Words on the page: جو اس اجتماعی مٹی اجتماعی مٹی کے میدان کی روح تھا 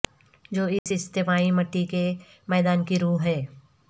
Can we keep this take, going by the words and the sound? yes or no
no